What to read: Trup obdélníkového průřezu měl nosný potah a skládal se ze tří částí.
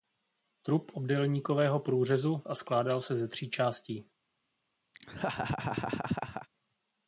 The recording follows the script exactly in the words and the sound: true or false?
false